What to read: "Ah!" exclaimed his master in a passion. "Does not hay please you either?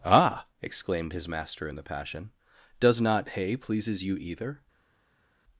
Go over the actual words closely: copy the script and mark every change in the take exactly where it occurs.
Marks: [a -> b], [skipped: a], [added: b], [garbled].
"Ah!" exclaimed his master in [a -> the] passion. "Does not hay [please -> pleases] you either?